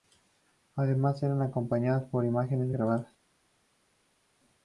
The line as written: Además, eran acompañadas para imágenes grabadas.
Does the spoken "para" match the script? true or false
false